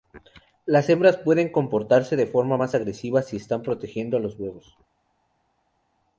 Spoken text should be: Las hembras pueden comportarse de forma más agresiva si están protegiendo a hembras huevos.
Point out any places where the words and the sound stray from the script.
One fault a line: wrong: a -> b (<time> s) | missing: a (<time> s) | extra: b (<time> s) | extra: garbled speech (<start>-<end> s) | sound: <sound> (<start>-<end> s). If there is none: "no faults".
wrong: hembras -> los (4.2 s)